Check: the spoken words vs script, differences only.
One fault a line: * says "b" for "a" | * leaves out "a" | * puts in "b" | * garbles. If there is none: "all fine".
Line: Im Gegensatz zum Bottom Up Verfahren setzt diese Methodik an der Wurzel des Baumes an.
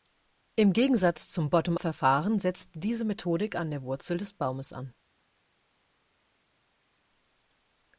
* leaves out "Up"